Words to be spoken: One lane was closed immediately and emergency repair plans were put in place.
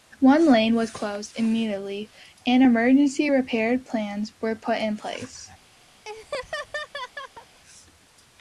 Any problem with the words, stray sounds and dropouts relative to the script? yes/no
yes